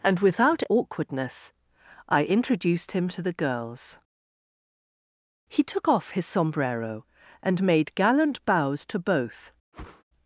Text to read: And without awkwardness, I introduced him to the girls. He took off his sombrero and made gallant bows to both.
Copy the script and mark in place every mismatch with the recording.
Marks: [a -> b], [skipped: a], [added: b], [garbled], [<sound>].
And without awkwardness, I introduced him to the girls. He took off his sombrero and made gallant bows to both. [whoosh]